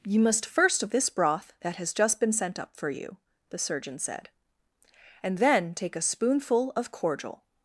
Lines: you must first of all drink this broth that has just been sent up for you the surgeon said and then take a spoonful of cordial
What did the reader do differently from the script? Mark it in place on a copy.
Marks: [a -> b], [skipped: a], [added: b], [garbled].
you must first of [skipped: all drink] this broth that has just been sent up for you the surgeon said and then take a spoonful of cordial